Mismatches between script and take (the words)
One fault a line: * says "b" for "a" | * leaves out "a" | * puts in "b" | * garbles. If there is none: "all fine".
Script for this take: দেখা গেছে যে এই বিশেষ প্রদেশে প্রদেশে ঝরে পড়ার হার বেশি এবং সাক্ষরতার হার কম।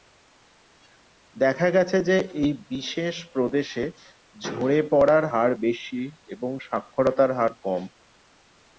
* leaves out "প্রদেশে"